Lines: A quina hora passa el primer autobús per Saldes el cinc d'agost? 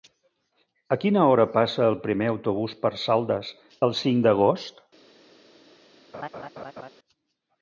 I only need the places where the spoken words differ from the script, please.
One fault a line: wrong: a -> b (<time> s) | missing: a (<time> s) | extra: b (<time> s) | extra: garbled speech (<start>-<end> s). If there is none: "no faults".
no faults